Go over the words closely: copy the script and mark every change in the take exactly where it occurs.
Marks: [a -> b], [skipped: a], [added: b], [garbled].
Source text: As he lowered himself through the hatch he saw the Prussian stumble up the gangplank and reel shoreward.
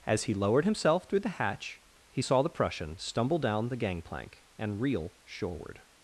As he lowered himself through the hatch he saw the Prussian stumble [up -> down] the gangplank and reel shoreward.